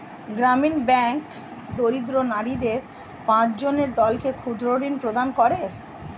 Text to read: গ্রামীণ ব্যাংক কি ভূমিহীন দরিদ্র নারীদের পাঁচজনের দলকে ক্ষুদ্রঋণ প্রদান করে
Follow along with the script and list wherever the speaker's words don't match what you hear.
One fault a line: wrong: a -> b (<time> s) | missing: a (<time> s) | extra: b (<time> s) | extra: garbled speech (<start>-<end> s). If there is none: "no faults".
missing: কি ভূমিহীন (1.2 s)